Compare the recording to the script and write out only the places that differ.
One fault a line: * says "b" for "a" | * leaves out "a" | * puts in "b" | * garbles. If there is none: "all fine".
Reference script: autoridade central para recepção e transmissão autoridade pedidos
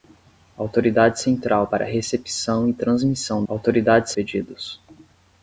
all fine